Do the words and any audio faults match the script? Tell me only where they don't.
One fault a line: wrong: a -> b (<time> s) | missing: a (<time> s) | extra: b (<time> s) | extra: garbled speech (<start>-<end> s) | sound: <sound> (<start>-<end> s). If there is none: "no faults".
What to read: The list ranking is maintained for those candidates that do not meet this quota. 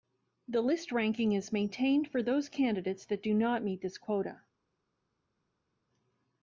no faults